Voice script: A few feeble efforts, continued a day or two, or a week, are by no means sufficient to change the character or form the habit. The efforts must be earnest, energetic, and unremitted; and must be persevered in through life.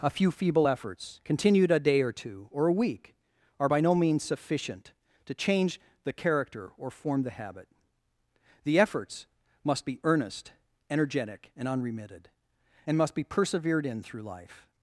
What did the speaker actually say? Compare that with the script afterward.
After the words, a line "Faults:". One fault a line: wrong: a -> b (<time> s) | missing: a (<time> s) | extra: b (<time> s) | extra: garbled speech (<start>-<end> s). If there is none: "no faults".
A few feeble efforts, continued a day or two, or a week, are by no means sufficient to change the character or form the habit. The efforts must be earnest, energetic, and unremitted; and must be persevered in through life.
Faults:
no faults